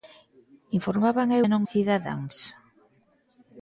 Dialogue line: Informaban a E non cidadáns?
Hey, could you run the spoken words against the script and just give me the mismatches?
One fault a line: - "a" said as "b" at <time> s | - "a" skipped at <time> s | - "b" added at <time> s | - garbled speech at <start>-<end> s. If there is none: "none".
none